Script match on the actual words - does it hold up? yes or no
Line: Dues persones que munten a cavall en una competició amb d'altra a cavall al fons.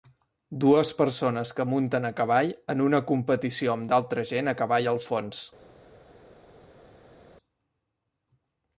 no